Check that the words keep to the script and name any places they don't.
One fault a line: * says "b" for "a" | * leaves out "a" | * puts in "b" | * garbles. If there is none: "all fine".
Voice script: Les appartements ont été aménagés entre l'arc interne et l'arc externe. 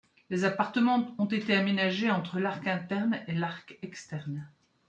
all fine